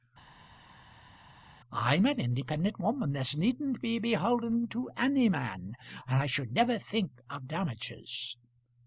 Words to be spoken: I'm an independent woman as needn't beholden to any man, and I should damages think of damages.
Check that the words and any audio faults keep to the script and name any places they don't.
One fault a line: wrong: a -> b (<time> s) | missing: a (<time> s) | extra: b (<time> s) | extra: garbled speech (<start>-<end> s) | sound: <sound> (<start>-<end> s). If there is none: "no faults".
extra: be (3.8 s)
wrong: damages -> never (6.5 s)